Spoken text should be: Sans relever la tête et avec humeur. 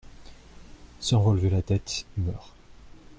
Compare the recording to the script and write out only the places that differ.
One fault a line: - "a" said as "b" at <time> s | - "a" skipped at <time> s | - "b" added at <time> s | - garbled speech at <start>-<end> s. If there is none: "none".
- "et avec" skipped at 2.1 s